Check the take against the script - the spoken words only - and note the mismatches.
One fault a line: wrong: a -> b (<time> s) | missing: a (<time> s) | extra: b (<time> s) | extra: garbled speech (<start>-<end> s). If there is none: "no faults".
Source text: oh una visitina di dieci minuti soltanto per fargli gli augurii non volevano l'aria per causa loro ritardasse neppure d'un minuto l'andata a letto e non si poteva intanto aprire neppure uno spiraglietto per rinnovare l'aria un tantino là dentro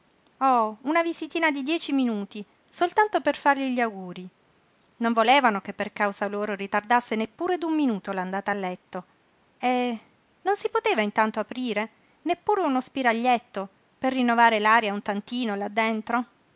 wrong: l'aria -> che (5.6 s)